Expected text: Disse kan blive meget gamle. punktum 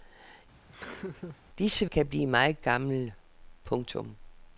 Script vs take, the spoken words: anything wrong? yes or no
no